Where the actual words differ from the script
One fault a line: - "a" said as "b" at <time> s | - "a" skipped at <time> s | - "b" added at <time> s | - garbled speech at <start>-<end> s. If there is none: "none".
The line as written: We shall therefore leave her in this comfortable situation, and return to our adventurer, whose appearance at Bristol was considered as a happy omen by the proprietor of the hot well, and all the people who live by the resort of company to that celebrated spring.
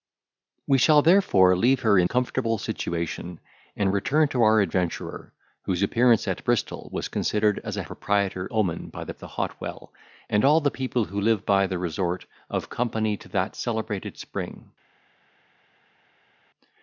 - "this" skipped at 2.1 s
- "happy" said as "proprietor" at 7.8 s
- "proprietor of" skipped at 9.2 s